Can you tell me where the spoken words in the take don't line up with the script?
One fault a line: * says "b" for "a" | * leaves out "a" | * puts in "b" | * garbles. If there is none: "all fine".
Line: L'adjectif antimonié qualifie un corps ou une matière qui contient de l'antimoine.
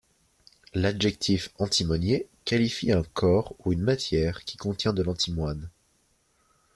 all fine